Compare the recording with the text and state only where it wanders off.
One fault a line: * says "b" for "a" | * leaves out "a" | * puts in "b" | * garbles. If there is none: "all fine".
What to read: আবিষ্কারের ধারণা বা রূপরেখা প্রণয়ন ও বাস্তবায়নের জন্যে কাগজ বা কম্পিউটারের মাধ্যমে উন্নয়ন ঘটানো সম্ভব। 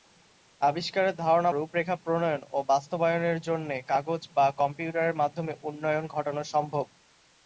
* leaves out "বা"